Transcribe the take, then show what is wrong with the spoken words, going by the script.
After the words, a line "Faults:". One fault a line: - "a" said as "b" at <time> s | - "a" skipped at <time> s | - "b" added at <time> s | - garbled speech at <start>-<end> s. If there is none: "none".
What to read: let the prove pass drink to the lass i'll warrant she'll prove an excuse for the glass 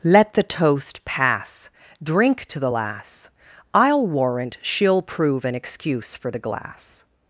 let the toast pass drink to the lass i'll warrant she'll prove an excuse for the glass
Faults:
- "prove" said as "toast" at 0.4 s